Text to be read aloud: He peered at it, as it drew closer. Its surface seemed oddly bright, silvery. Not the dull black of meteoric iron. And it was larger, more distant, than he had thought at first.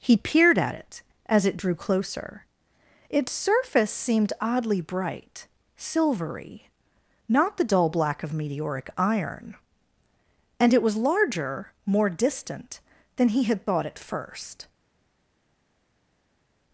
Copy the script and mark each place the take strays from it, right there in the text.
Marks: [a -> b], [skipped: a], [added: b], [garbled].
He peered at it, as it drew closer. Its surface seemed oddly bright, silvery. Not the dull black of meteoric iron. And it was larger, more distant, than he had thought at first.